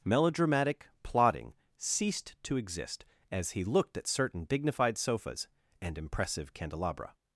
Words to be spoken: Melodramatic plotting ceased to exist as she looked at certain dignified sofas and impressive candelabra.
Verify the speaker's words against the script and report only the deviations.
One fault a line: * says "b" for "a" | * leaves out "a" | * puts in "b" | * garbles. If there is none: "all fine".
* says "he" for "she"